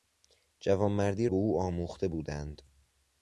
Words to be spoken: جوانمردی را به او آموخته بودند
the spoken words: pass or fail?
fail